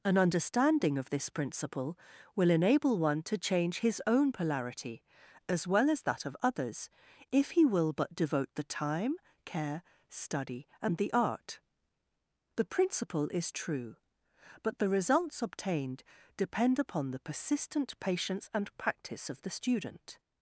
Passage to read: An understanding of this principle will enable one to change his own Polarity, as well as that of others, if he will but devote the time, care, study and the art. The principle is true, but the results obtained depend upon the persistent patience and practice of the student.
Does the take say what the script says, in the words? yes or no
yes